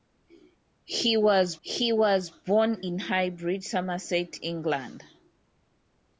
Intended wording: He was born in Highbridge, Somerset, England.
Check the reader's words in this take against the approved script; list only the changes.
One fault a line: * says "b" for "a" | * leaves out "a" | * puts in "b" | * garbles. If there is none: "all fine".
* puts in "he was"